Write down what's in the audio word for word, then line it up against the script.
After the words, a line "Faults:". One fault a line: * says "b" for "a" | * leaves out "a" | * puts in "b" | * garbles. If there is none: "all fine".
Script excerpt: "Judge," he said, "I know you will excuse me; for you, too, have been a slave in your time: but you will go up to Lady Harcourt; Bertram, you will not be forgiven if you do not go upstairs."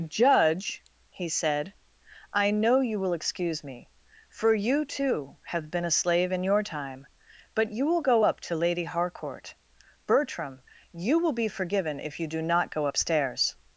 "Judge," he said, "I know you will excuse me; for you, too, have been a slave in your time: but you will go up to Lady Harcourt; Bertram, you will be forgiven if you do not go upstairs."
Faults:
* leaves out "not"